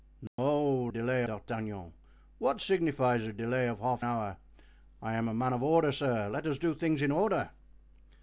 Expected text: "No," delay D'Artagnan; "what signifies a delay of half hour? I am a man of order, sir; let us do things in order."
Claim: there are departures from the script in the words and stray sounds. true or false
true